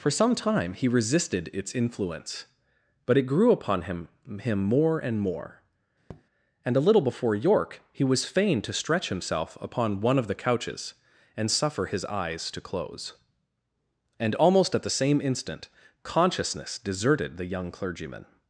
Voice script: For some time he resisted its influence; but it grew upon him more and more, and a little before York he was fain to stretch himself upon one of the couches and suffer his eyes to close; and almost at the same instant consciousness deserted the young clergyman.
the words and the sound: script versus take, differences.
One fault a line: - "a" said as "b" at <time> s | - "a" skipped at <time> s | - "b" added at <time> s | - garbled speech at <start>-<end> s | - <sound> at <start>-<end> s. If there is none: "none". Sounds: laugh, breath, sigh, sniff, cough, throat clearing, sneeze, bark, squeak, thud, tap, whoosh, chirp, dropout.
- "him" added at 4.4 s
- tap at 6.1-6.2 s